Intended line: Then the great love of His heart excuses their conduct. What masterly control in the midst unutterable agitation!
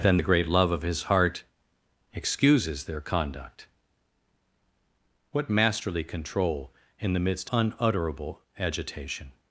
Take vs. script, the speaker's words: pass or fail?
pass